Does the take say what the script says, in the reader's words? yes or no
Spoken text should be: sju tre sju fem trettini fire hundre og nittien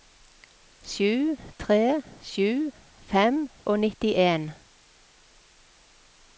no